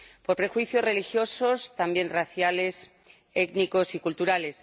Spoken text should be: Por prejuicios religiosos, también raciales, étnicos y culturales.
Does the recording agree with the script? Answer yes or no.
yes